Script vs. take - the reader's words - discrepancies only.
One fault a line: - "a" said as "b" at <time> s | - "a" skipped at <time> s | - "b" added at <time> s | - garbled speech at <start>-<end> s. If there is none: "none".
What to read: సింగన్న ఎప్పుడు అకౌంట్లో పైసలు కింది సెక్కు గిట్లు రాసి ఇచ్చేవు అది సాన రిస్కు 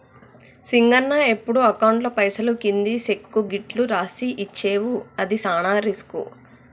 none